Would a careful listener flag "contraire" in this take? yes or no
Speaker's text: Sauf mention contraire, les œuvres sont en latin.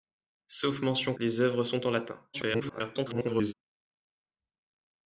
yes